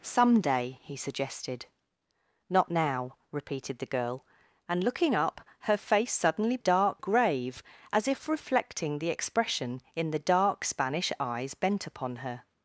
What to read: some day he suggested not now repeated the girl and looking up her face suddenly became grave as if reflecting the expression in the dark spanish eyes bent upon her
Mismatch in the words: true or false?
true